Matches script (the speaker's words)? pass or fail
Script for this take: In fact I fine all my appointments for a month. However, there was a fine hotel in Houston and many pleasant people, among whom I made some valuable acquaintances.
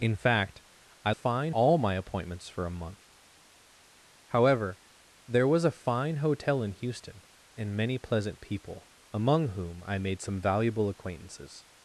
pass